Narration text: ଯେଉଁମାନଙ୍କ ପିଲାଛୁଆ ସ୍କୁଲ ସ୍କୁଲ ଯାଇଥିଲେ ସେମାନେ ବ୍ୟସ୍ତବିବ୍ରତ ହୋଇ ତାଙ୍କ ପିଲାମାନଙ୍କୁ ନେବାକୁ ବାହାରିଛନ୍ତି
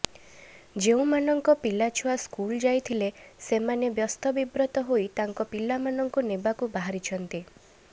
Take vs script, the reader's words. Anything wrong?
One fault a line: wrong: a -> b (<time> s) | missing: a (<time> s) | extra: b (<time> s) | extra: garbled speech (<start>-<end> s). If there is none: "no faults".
missing: ସ୍କୁଲ (2.6 s)